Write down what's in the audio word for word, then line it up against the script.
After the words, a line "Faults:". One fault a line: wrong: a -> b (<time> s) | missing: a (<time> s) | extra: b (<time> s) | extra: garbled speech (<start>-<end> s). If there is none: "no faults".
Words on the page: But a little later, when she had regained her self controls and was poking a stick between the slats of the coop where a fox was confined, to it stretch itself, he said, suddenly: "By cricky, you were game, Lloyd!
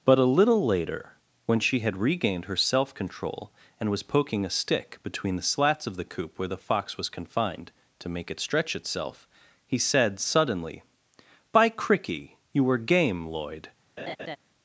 But a little later, when she had regained her self control and was poking a stick between the slats of the coop where the fox was confined, to make it stretch itself, he said, suddenly: "By cricky, you were game, Lloyd!
Faults:
wrong: controls -> control (2.9 s)
wrong: a -> the (6.5 s)
extra: make (8.1 s)